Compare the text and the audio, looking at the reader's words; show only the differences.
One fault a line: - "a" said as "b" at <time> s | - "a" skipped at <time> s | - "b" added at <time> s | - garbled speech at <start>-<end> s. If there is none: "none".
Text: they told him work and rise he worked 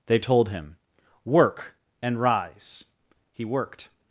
none